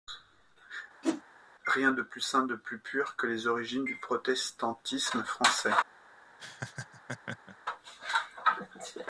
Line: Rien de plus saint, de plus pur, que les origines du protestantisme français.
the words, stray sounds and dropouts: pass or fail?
fail